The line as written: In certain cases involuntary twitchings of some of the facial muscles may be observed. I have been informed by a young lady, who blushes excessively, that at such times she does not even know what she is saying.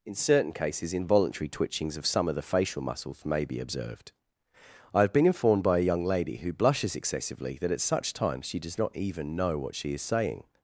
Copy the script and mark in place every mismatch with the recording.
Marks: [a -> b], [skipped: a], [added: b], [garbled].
In certain cases involuntary twitchings of some of the facial muscles may be observed. I have been informed by a young lady, who blushes excessively, that at such times she does not even know what she is saying.